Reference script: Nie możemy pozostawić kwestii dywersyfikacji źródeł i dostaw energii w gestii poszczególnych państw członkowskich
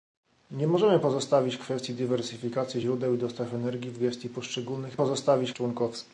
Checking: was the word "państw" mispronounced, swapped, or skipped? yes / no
yes